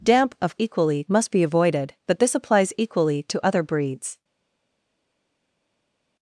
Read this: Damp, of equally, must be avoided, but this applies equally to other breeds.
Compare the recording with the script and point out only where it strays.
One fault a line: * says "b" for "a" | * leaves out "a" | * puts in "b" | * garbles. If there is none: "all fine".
all fine